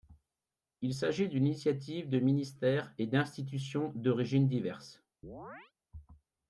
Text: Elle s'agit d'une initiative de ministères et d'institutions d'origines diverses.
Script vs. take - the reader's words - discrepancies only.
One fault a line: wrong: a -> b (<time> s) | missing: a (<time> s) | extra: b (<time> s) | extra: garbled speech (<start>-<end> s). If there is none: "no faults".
wrong: Elle -> Il (0.8 s)